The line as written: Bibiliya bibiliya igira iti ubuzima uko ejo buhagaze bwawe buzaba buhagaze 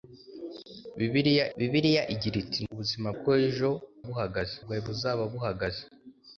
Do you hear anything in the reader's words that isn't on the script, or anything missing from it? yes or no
no